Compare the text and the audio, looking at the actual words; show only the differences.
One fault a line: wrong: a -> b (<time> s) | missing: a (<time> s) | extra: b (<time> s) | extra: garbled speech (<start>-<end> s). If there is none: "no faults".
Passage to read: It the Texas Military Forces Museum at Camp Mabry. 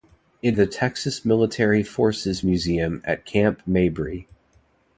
no faults